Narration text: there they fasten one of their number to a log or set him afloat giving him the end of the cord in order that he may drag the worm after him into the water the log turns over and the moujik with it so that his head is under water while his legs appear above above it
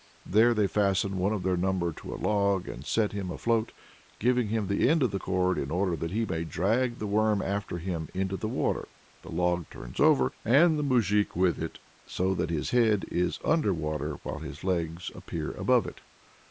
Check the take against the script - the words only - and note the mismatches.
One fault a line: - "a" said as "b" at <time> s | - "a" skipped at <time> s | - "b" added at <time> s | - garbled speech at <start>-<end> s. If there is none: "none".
- "or" said as "and" at 2.7 s
- "above" skipped at 15.9 s